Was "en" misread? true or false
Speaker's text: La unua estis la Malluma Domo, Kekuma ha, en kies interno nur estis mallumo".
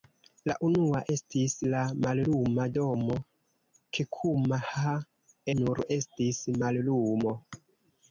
true